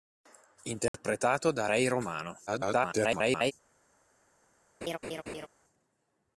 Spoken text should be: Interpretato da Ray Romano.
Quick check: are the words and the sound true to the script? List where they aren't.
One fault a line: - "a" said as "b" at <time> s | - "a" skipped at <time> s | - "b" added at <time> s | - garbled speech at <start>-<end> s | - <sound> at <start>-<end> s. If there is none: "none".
- dropout at 0.9-0.9 s
- garbled speech at 2.5-3.5 s
- laugh at 4.8-5.5 s